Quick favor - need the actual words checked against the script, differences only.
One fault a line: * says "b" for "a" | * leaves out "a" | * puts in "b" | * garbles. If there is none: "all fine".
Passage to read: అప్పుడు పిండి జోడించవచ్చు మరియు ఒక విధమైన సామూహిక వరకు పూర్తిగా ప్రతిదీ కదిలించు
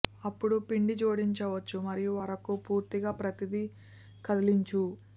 * leaves out "ఒక విధమైన సామూహిక"